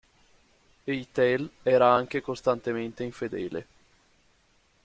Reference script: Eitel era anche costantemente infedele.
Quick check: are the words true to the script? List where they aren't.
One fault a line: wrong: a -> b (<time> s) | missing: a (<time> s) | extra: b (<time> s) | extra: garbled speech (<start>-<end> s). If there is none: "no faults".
no faults